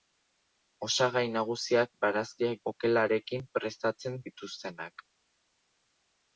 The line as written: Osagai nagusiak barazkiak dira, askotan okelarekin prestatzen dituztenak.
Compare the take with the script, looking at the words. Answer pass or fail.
fail